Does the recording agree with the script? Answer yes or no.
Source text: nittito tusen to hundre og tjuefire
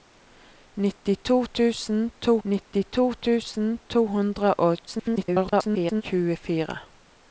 no